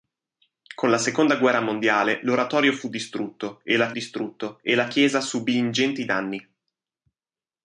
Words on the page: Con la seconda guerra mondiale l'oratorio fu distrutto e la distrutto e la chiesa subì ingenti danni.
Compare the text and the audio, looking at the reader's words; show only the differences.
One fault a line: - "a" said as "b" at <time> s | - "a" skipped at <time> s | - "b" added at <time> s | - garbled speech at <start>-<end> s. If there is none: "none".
none